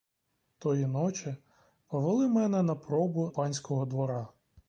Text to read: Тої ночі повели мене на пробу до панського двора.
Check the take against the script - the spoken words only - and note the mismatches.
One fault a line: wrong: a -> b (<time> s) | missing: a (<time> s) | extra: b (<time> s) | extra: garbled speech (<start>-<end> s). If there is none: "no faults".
missing: до (3.3 s)